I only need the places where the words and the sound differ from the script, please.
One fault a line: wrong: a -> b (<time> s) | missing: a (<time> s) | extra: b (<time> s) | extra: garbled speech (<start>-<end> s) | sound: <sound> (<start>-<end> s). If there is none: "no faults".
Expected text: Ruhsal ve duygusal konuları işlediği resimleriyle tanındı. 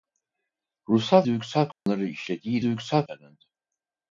missing: ve (1.2 s)
sound: dropout (1.7-1.9 s)
wrong: resimleriyle -> duygusal (2.6 s)